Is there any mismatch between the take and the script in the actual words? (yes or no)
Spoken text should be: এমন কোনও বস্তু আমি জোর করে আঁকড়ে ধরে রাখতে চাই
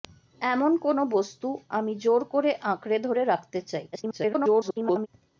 yes